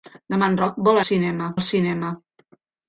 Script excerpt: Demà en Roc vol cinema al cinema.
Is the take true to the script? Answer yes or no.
yes